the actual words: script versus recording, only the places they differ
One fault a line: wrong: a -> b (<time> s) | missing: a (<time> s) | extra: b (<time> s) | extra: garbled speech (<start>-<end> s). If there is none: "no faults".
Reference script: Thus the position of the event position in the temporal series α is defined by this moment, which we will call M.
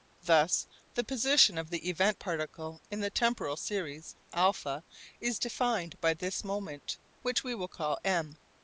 wrong: position -> particle (2.2 s)